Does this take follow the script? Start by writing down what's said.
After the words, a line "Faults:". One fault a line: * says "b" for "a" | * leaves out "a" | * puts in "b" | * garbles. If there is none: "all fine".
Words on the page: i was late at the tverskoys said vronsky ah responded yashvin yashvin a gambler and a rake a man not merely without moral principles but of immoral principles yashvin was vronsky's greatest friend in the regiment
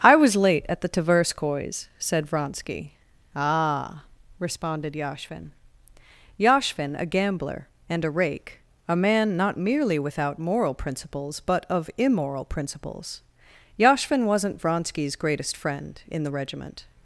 i was late at the tverskoys said vronsky ah responded yashvin yashvin a gambler and a rake a man not merely without moral principles but of immoral principles yashvin wasn't vronsky's greatest friend in the regiment
Faults:
* says "wasn't" for "was"